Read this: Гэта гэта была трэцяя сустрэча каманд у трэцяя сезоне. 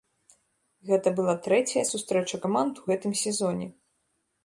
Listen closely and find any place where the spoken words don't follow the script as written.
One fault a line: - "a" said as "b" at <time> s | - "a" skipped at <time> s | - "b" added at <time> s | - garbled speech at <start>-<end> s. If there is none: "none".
- "гэта" skipped at 1.1 s
- "трэцяя" said as "гэтым" at 2.9 s